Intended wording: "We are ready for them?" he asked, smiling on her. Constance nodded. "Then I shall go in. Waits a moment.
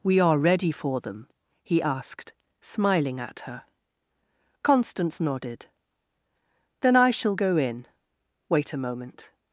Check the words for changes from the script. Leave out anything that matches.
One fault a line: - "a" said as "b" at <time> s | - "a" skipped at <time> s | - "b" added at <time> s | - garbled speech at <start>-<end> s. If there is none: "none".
- "on" said as "at" at 3.2 s
- "Waits" said as "Wait" at 8.5 s